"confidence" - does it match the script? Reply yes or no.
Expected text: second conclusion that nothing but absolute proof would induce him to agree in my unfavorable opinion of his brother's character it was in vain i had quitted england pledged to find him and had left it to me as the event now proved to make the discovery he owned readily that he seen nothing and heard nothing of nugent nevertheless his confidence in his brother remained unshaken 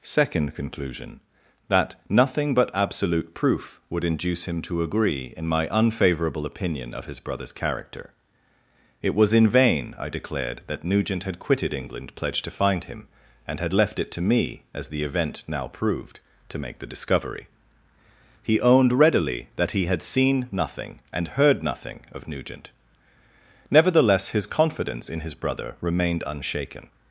yes